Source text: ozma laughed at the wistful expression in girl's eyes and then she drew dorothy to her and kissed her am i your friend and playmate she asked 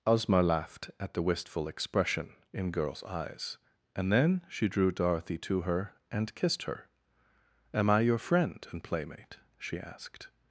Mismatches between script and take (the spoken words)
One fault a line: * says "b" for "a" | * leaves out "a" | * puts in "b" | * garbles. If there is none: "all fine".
all fine